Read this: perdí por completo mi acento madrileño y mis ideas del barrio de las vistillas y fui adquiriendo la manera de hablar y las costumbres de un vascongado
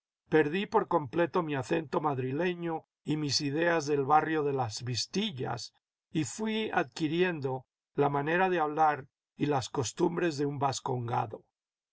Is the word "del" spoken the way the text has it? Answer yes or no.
yes